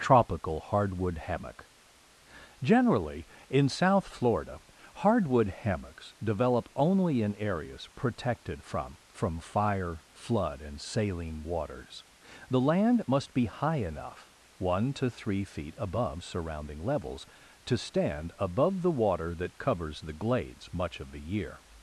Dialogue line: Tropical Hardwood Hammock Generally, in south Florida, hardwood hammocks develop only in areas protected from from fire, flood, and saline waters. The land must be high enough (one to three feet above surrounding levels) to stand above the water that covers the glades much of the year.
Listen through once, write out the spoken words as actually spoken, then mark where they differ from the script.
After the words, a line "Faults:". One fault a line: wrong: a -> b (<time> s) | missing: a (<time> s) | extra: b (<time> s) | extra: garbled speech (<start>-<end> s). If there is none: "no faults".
Tropical Hardwood Hammock Generally, in south Florida, hardwood hammocks develop only in areas protected from from fire, flood, and saline waters. The land must be high enough (one to three feet above surrounding levels) to stand above the water that covers the glades much of the year.
Faults:
no faults